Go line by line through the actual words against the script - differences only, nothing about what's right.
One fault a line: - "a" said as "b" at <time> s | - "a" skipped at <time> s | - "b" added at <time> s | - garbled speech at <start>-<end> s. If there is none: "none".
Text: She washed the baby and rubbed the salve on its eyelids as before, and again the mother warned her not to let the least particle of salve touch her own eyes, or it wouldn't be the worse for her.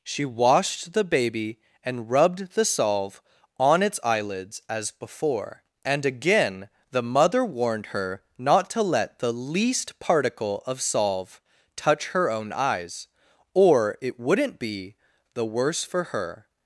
none